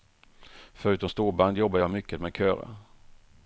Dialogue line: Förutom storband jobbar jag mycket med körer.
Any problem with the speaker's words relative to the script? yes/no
no